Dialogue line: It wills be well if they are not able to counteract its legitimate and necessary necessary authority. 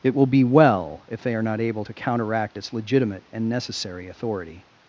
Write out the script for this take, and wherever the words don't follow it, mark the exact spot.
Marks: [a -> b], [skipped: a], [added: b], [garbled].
It [wills -> will] be well if they are not able to counteract its legitimate and necessary [skipped: necessary] authority.